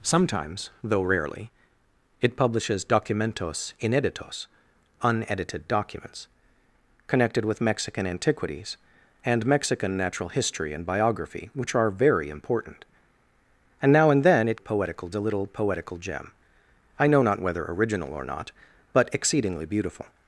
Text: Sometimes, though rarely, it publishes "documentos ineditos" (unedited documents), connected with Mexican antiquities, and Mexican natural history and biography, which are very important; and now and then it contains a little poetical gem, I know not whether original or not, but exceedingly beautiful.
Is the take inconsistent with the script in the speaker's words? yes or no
yes